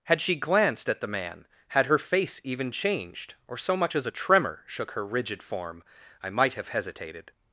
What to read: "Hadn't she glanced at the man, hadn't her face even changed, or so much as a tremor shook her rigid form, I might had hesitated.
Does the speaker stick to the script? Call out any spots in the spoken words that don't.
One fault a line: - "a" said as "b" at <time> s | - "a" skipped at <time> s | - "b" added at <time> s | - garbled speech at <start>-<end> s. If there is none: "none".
- "Hadn't" said as "Had" at 0.1 s
- "hadn't" said as "had" at 1.7 s
- "had" said as "have" at 6.5 s